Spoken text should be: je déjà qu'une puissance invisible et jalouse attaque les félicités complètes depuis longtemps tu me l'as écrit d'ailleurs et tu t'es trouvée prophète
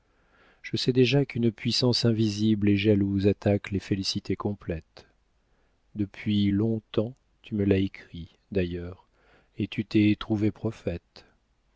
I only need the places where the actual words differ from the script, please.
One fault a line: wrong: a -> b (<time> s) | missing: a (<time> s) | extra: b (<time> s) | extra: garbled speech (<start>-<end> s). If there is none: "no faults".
extra: sais (0.8 s)